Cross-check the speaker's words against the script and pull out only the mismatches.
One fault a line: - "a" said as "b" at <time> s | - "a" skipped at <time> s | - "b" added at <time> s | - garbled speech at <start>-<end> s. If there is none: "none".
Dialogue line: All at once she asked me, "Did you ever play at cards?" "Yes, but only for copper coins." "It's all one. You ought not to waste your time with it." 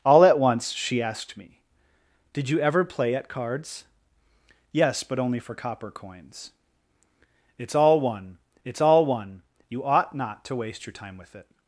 - "it's all one" added at 8.6 s